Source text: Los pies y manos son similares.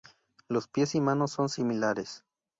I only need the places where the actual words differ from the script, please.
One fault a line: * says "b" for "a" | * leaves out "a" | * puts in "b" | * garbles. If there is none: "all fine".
all fine